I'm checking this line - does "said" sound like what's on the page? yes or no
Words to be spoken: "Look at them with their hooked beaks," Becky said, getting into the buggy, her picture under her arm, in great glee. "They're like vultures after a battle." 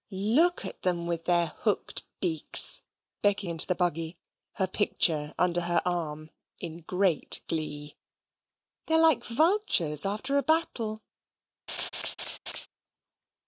no